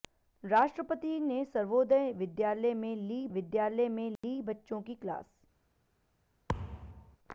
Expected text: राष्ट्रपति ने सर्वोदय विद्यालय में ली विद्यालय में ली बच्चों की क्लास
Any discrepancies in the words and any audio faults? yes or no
yes